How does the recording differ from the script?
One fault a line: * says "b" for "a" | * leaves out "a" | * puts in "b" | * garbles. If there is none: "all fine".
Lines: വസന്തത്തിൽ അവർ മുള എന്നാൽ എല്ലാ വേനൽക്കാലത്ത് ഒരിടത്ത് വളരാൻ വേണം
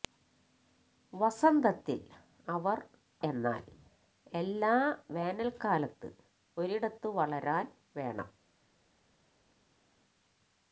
* leaves out "മുള"